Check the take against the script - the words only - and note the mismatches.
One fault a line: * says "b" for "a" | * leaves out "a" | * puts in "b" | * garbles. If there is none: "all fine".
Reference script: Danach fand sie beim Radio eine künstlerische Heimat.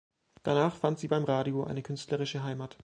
all fine